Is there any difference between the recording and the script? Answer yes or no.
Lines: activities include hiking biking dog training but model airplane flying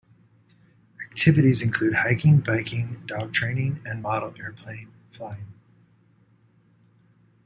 yes